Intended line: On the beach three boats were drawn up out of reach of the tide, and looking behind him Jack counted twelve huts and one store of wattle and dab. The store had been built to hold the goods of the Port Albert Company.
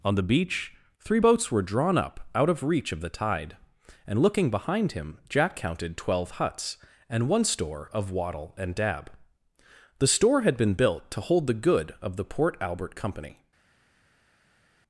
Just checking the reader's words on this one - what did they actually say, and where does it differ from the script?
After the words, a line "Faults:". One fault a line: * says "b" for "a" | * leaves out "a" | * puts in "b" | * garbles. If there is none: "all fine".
On the beach three boats were drawn up out of reach of the tide, and looking behind him Jack counted twelve huts and one store of wattle and dab. The store had been built to hold the good of the Port Albert Company.
Faults:
* says "good" for "goods"